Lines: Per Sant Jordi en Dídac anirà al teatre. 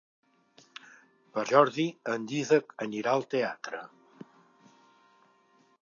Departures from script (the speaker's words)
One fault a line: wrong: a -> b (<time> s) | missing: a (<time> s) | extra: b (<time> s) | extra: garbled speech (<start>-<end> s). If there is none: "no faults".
missing: Sant (1.4 s)